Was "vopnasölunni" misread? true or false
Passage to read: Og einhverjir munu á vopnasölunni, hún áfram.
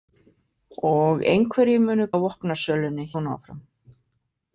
false